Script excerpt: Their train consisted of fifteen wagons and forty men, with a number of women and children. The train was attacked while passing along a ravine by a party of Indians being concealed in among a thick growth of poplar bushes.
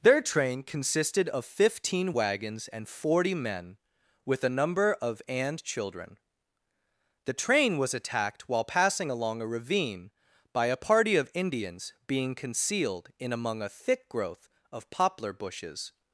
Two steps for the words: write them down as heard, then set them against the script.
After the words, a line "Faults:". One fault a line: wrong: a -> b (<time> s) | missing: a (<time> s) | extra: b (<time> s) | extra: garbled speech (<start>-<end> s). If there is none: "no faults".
Their train consisted of fifteen wagons and forty men, with a number of and children. The train was attacked while passing along a ravine by a party of Indians being concealed in among a thick growth of poplar bushes.
Faults:
missing: women (5.2 s)